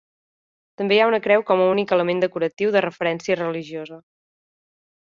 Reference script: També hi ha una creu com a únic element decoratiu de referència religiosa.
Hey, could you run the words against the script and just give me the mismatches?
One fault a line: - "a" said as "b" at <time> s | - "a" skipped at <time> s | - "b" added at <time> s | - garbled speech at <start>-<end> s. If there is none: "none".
none